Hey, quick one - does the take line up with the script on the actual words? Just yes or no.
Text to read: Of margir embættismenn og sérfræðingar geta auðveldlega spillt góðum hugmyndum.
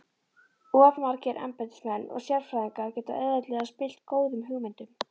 yes